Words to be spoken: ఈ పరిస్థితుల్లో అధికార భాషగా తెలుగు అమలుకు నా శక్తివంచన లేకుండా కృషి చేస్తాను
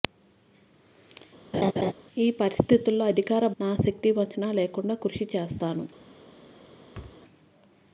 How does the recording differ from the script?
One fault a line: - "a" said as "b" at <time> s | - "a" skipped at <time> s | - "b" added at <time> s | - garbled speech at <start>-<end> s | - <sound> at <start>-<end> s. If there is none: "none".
- laugh at 1.5-1.9 s
- "భాషగా తెలుగు అమలుకు" skipped at 3.5 s
- thud at 6.9-7.2 s